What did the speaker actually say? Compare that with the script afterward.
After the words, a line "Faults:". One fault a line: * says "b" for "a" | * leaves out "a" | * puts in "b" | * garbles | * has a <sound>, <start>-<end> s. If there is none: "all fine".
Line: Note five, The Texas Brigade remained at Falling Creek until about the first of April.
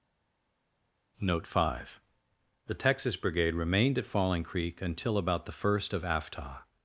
Note five, The Texas Brigade remained at Falling Creek until about the first of Aftah.
Faults:
* says "Aftah" for "April"